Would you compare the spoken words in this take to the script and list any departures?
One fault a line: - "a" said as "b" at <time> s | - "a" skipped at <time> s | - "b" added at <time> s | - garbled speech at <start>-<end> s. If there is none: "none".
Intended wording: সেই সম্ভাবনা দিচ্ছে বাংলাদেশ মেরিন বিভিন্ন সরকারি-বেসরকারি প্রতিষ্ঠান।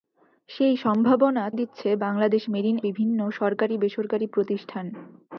none